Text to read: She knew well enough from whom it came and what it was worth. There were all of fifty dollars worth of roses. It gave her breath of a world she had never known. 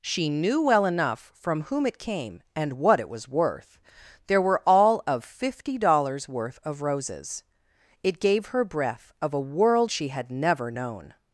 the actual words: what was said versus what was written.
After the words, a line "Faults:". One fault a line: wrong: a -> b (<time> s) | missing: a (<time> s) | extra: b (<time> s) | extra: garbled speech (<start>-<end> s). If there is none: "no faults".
She knew well enough from whom it came and what it was worth. There were all of fifty dollars worth of roses. It gave her breath of a world she had never known.
Faults:
no faults